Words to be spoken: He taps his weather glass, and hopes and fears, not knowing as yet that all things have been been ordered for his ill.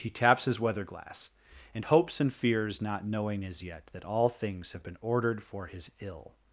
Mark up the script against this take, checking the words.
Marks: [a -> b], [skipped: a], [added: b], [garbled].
He taps his weather glass, and hopes and fears, not knowing as yet that all things have been [skipped: been] ordered for his ill.